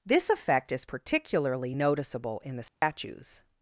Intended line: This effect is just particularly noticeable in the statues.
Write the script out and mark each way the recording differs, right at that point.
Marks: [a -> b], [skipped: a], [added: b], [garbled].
This effect is [skipped: just] particularly noticeable in the statues.